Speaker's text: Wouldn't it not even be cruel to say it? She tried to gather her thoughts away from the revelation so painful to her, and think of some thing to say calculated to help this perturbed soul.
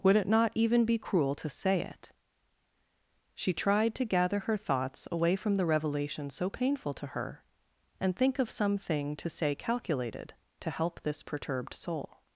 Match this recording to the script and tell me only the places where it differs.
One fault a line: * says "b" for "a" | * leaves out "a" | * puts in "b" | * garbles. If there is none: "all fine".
* says "Would" for "Wouldn't"